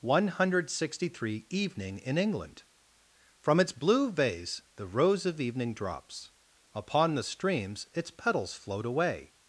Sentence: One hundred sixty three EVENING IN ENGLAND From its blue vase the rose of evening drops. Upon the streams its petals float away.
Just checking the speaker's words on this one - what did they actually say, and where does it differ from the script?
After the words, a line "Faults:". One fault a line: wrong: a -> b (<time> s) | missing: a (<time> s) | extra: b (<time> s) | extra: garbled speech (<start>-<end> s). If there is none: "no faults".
One hundred sixty three EVENING IN ENGLAND From its blue vase the rose of evening drops. Upon the streams its petals float away.
Faults:
no faults